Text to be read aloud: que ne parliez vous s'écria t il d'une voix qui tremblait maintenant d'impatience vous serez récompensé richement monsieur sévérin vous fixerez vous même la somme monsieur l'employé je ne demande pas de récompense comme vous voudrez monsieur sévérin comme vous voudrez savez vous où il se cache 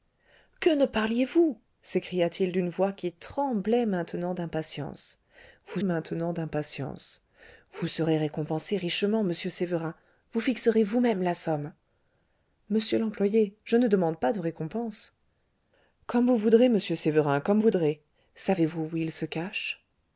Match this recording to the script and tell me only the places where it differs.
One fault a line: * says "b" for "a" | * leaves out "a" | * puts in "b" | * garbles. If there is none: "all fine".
* puts in "maintenant d'impatience vous"
* leaves out "vous"